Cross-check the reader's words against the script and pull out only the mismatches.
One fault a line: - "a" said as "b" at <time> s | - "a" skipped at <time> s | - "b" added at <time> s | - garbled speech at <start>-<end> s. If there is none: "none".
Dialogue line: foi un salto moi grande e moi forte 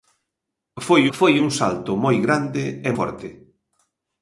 - "foi" added at 1.2 s
- "moi" skipped at 2.9 s